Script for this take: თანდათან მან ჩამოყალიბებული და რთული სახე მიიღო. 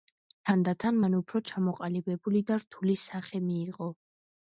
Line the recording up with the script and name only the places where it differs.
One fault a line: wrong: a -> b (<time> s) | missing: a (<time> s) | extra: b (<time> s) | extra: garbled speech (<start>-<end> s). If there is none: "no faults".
extra: უფრო (1.2 s)